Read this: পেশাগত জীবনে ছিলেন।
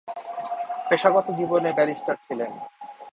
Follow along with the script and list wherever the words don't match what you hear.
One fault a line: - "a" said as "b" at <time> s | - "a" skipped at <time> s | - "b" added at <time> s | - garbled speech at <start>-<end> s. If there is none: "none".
- "ব্যারিস্টার" added at 1.7 s